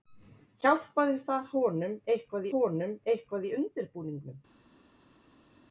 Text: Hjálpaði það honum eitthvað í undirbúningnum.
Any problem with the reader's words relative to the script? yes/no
yes